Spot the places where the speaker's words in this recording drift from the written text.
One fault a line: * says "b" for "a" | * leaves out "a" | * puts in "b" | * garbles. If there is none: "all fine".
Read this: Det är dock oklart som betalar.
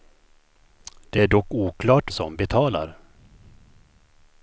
all fine